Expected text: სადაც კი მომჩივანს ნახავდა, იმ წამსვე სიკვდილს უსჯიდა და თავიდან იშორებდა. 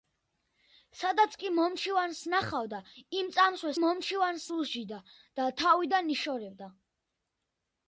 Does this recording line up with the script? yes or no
no